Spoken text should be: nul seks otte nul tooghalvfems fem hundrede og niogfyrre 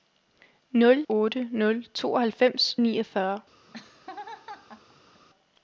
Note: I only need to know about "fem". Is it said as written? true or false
false